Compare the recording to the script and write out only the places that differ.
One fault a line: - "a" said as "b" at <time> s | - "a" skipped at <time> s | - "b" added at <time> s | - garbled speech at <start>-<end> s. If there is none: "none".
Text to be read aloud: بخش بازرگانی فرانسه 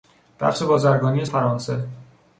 none